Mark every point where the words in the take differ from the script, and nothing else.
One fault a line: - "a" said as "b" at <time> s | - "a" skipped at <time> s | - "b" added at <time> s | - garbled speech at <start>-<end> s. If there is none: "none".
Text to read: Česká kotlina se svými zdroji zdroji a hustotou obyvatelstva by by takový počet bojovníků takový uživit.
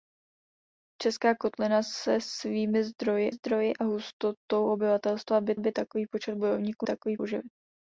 none